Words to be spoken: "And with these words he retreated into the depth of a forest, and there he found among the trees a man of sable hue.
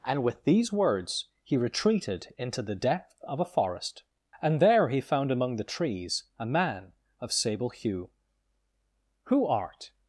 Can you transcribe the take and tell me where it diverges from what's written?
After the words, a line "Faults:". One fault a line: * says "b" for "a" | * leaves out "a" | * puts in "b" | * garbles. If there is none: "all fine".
"And with these words he retreated into the depth of a forest, and there he found among the trees a man of sable hue. 'Who art
Faults:
* puts in "Who art"